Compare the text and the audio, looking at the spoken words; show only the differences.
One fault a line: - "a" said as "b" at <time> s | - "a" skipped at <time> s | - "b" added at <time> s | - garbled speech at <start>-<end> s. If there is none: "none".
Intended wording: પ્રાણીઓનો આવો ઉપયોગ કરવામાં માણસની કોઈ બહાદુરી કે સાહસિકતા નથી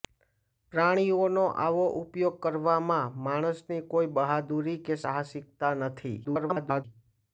- garbled speech at 6.2-6.8 s